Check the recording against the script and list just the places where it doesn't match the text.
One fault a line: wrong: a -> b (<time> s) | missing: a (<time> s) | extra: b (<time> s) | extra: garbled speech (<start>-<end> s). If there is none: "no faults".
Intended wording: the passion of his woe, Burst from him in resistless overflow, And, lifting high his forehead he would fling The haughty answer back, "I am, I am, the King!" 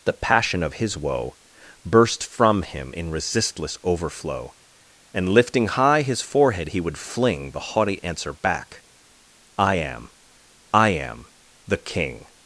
no faults